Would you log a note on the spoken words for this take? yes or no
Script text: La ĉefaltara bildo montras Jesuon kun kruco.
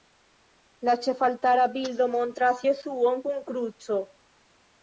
no